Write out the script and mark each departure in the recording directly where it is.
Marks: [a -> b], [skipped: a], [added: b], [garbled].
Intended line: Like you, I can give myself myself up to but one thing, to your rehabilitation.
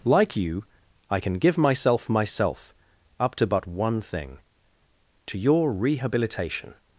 Like you, I can give myself myself up to but one thing, to your rehabilitation.